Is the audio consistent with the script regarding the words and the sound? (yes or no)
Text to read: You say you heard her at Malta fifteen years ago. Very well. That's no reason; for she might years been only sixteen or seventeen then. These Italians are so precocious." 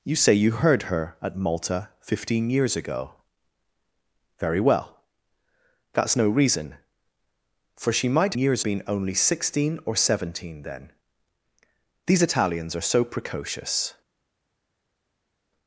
yes